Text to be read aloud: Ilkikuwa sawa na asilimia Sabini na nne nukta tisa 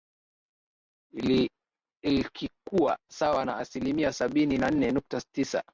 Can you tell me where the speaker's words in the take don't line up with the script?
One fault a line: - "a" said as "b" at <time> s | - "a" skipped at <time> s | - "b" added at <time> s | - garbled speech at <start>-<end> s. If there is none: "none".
none